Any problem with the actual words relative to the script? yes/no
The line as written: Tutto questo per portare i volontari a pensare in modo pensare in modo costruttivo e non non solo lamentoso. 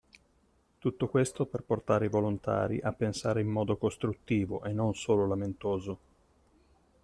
yes